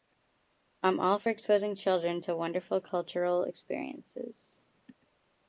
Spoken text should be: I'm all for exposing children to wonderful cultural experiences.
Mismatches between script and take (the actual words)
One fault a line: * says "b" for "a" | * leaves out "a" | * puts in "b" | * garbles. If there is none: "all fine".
all fine